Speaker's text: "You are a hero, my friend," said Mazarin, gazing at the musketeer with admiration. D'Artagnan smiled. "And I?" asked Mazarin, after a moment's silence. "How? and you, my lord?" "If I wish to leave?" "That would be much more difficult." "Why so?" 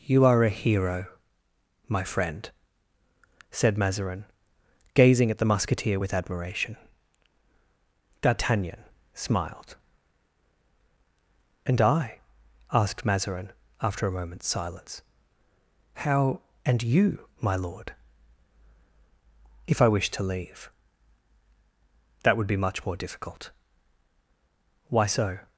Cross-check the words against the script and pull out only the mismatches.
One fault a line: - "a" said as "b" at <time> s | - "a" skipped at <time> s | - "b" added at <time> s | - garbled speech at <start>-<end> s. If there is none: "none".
none